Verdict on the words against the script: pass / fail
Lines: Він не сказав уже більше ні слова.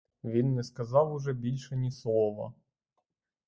pass